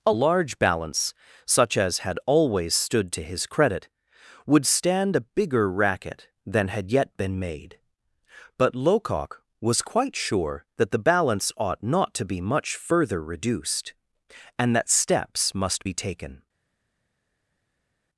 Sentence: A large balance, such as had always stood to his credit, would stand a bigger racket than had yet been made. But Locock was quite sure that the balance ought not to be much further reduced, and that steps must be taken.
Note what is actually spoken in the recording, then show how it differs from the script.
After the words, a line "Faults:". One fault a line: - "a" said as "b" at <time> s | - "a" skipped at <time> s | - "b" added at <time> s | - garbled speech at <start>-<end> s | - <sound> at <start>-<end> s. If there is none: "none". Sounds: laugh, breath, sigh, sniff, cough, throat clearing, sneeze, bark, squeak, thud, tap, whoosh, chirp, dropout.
A large balance, such as had always stood to his credit, would stand a bigger racket than had yet been made. But Locock was quite sure that the balance ought not to be much further reduced, and that steps must be taken.
Faults:
none